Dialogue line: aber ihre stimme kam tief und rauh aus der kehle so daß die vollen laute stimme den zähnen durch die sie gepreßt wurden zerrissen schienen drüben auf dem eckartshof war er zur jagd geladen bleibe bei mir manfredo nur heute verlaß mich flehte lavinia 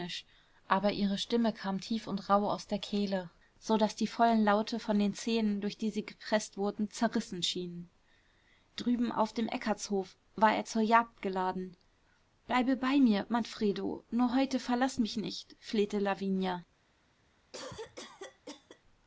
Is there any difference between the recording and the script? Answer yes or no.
yes